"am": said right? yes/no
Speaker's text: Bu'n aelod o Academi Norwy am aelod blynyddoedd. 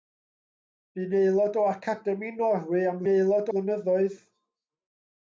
yes